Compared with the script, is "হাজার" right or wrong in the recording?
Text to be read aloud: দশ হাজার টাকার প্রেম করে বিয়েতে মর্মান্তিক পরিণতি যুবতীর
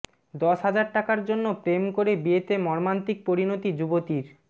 right